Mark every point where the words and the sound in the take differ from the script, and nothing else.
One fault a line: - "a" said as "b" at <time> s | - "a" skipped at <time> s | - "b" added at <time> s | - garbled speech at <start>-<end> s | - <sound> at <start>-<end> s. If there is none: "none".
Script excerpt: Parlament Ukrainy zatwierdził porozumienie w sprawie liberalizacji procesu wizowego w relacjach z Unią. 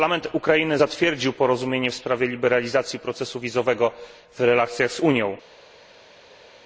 none